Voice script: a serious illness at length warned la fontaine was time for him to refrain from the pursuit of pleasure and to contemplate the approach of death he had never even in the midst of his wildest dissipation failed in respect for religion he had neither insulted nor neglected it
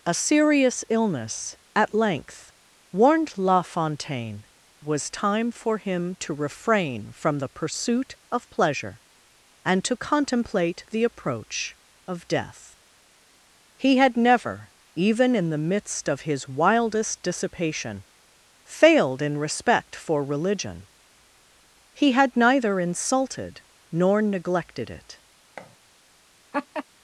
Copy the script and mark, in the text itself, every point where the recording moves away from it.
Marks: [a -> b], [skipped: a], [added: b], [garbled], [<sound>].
a serious illness at length warned la fontaine was time for him to refrain from the pursuit of pleasure and to contemplate the approach of death he had never even in the midst of his wildest dissipation failed in respect for religion he had neither insulted nor neglected it [thud] [laugh]